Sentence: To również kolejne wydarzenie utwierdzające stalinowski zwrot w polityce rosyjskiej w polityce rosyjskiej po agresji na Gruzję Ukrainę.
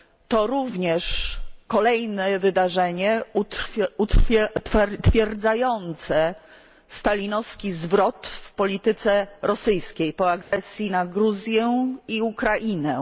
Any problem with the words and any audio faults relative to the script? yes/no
yes